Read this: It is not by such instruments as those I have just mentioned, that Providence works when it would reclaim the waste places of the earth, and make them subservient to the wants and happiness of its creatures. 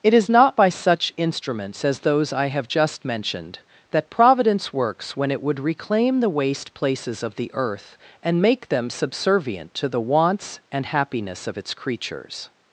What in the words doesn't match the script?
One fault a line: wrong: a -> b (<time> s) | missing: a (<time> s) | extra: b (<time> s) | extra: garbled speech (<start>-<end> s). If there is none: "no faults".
no faults